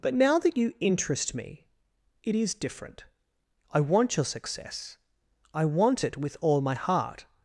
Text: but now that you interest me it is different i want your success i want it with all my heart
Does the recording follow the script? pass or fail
pass